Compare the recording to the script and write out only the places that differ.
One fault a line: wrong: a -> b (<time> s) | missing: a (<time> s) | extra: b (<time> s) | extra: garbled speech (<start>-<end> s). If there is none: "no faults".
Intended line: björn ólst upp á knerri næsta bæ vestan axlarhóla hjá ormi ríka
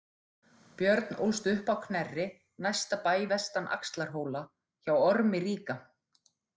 no faults